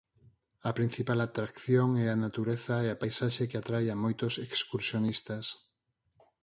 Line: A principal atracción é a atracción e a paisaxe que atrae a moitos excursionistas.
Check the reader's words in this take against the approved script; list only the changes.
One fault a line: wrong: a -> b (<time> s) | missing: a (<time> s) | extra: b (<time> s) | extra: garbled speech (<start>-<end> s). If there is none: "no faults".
wrong: atracción -> natureza (2.3 s)